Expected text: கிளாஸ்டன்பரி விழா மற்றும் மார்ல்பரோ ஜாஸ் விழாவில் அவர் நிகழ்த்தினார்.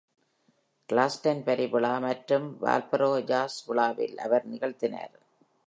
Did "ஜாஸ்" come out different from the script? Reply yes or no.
no